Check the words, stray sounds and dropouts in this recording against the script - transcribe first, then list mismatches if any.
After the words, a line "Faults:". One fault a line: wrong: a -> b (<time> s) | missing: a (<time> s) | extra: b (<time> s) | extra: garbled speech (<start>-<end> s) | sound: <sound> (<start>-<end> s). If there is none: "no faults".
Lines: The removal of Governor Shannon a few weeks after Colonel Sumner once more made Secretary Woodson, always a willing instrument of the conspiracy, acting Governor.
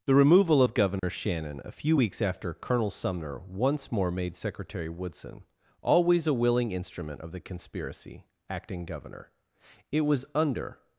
The removal of Governor Shannon a few weeks after Colonel Sumner once more made Secretary Woodson, always a willing instrument of the conspiracy, acting Governor. It was under
Faults:
sound: dropout (1.0-1.0 s)
extra: It was under (9.9 s)